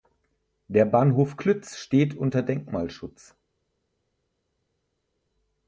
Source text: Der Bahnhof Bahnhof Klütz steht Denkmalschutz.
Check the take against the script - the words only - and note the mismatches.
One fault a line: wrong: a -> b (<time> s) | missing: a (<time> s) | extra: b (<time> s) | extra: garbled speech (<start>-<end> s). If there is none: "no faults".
missing: Bahnhof (1.4 s)
extra: unter (2.1 s)